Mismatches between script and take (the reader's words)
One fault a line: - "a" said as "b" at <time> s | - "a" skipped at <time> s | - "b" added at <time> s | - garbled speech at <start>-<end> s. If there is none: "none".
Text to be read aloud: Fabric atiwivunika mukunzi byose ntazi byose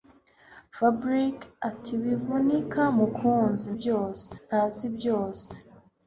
none